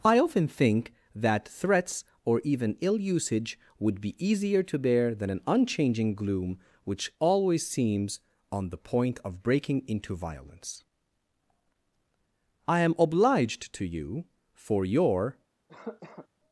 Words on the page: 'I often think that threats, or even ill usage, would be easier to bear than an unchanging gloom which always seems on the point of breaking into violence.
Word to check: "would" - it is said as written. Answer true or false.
true